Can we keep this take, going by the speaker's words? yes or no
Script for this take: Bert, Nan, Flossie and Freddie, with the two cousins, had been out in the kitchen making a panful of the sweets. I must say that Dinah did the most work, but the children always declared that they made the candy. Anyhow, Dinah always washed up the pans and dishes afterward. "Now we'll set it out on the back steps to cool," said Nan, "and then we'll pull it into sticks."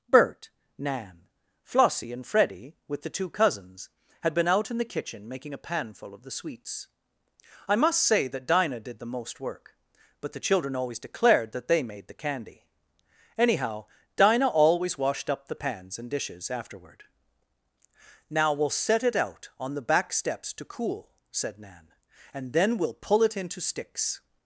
yes